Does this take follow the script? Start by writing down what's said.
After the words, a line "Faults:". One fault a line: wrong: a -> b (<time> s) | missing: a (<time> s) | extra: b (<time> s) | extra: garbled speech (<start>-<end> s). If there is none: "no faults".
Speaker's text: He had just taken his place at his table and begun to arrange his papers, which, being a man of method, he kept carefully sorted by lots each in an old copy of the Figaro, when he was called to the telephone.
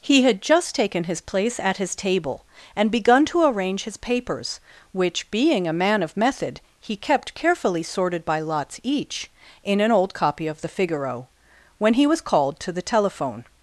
He had just taken his place at his table and begun to arrange his papers, which, being a man of method, he kept carefully sorted by lots each in an old copy of the Figaro, when he was called to the telephone.
Faults:
no faults